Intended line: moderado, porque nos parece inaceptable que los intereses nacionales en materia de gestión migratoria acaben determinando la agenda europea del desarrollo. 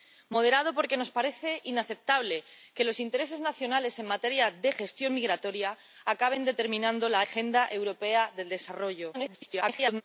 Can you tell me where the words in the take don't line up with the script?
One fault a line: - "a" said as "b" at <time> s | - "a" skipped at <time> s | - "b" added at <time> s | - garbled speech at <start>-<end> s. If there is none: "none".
- garbled speech at 9.1-10.0 s